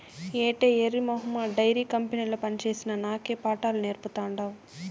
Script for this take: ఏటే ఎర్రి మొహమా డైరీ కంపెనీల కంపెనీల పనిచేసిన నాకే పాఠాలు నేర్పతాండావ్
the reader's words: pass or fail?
fail